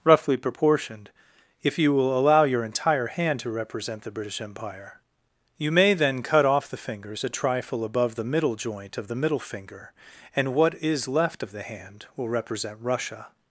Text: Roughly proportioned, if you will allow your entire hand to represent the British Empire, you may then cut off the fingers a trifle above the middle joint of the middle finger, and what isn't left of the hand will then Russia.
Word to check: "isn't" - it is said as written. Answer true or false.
false